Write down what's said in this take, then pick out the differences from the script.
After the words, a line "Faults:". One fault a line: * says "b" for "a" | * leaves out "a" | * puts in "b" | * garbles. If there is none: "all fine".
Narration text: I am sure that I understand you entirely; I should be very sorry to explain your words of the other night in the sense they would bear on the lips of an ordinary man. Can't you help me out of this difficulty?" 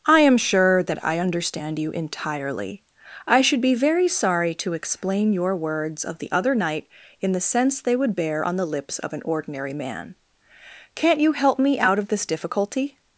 I am sure that I understand you entirely; I should be very sorry to explain your words of the other night in the sense they would bear on the lips of an ordinary man. Can't you help me out of this difficulty?"
Faults:
all fine